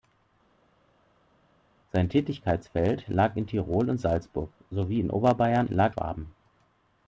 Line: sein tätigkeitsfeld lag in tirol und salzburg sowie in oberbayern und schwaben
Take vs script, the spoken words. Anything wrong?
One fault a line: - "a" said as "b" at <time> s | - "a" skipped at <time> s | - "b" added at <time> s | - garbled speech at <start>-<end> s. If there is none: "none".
- "und" said as "lag" at 5.7 s